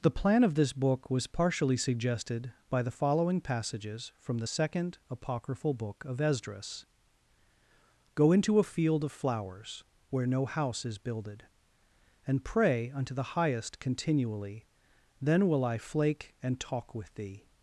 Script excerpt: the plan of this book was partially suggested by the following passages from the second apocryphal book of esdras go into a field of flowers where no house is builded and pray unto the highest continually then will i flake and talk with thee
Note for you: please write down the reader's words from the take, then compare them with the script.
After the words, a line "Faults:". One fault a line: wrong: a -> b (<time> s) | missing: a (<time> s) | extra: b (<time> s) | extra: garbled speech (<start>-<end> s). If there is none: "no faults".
the plan of this book was partially suggested by the following passages from the second apocryphal book of esdras go into a field of flowers where no house is builded and pray unto the highest continually then will i flake and talk with thee
Faults:
no faults